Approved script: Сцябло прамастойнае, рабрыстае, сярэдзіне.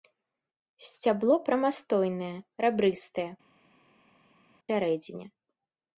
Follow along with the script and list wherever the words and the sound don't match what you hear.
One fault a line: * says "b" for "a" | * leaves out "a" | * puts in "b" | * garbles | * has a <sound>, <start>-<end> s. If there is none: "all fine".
all fine